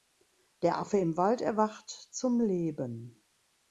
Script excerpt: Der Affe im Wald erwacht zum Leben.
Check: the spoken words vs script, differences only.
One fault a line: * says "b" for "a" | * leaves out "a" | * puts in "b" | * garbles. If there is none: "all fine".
all fine